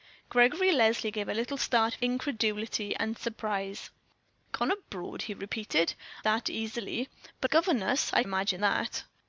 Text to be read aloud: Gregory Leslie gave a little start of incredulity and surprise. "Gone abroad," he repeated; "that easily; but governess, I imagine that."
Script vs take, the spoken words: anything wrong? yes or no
no